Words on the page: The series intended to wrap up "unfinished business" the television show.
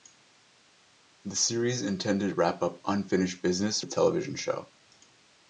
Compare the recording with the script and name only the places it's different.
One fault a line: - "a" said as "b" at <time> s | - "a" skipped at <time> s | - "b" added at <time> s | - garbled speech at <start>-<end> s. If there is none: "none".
none